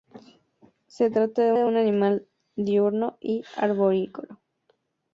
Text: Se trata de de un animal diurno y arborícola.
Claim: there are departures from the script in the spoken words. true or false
false